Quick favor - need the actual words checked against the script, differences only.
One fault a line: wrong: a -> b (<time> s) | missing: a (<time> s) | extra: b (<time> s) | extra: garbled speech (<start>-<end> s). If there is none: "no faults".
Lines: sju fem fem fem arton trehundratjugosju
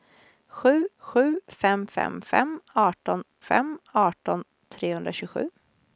extra: sju (1.0 s)
extra: fem arton (3.4 s)